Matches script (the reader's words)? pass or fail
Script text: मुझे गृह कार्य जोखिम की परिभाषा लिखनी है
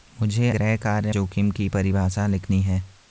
pass